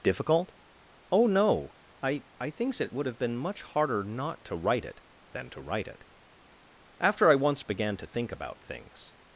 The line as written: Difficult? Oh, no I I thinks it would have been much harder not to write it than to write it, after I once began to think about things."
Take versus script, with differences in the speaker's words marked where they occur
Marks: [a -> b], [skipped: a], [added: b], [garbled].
Difficult? Oh, no I I thinks it would have been much harder not to write it than to write it, after I once began to think about things."